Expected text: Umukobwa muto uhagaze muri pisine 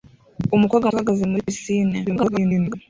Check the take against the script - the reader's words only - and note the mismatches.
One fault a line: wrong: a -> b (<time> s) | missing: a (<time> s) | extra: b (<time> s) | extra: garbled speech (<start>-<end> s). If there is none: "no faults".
missing: muto (0.9 s)
extra: garbled speech (2.0-2.8 s)